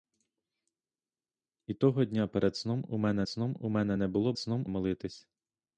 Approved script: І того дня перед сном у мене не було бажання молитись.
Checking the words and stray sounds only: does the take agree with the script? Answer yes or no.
no